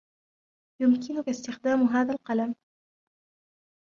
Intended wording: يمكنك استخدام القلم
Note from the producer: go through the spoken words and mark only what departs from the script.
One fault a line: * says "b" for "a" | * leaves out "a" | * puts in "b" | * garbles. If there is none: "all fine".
* puts in "هذا"